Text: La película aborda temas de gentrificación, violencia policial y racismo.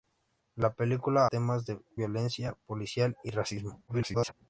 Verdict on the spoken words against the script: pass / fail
fail